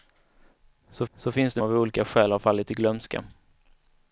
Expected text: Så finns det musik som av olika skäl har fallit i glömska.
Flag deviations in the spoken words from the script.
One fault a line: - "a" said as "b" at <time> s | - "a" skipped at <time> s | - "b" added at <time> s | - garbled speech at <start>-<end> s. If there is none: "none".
- "så" added at 1.1 s
- "musik som" skipped at 1.6 s